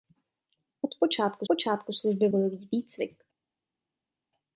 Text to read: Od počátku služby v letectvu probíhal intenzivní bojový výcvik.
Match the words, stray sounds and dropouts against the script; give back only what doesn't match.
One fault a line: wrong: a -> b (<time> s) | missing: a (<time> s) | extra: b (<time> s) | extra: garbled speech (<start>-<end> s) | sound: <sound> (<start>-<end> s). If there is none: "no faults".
extra: počátku (1.5 s)
missing: letectvu probíhal intenzivní (2.3 s)